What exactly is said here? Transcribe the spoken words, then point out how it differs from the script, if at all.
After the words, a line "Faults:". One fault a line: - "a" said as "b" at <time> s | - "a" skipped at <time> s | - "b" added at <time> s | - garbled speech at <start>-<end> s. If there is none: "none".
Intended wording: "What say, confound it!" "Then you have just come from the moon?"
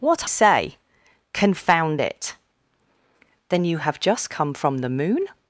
"What say, confound it!" "Then you have just come from the moon?"
Faults:
none